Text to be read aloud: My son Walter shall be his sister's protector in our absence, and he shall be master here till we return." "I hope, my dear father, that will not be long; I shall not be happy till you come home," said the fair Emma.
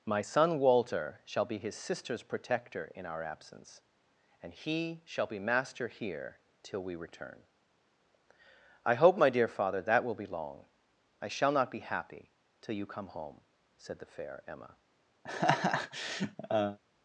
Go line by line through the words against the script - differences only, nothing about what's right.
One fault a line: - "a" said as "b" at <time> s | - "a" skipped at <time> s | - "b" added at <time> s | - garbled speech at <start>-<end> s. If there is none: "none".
- "not" skipped at 10.1 s